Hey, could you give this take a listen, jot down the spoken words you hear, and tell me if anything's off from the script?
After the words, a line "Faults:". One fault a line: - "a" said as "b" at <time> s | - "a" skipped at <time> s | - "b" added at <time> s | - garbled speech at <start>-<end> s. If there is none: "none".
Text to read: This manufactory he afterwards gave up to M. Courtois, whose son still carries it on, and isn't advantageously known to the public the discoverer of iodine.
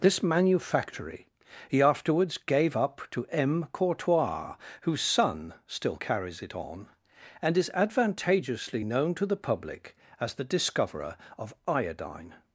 This manufactory he afterwards gave up to M. Courtois, whose son still carries it on, and is advantageously known to the public as the discoverer of iodine.
Faults:
- "isn't" said as "is" at 7.6 s
- "as" added at 10.2 s